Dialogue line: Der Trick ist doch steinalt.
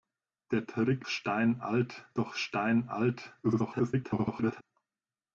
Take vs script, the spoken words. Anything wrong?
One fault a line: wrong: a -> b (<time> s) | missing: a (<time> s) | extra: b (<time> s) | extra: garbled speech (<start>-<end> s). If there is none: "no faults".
wrong: ist -> steinalt (1.1 s)
extra: garbled speech (3.4-4.6 s)